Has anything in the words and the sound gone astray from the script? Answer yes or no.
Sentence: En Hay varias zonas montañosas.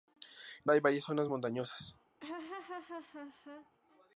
yes